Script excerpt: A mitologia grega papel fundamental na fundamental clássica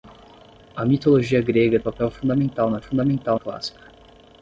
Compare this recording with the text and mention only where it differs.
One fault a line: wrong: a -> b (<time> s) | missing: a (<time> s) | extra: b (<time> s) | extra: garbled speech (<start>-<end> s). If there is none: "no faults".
no faults